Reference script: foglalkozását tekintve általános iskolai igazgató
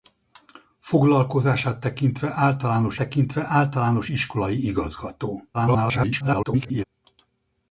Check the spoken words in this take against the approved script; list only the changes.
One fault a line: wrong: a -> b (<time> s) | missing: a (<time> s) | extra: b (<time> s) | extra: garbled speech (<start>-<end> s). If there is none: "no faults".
extra: tekintve általános (2.9 s)
extra: garbled speech (5.5-6.8 s)